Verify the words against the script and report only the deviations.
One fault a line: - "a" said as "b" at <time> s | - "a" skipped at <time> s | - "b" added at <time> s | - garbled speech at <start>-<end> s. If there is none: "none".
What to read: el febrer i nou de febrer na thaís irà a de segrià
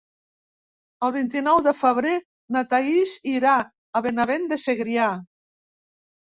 - "febrer" said as "vint" at 1.2 s
- "benavent" added at 4.1 s